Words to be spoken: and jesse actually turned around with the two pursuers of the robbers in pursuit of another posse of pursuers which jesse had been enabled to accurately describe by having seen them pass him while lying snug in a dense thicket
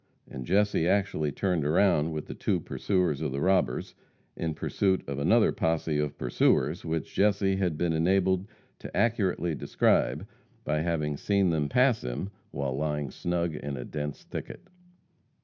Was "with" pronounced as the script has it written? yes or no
yes